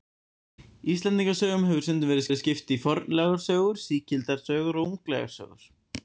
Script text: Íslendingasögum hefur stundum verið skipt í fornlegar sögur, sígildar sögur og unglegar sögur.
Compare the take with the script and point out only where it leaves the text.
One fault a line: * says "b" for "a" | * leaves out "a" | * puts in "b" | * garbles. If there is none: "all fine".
* puts in "verið"